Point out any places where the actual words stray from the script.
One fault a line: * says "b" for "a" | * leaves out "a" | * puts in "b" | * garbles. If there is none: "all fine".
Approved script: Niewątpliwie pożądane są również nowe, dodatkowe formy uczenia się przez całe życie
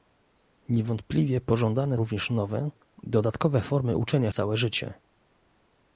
* leaves out "są"
* leaves out "się przez"